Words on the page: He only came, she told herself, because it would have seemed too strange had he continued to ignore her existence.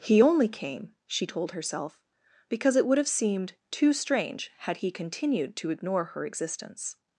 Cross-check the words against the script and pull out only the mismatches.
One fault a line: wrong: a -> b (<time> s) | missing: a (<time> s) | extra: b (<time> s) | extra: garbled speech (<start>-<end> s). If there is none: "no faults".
no faults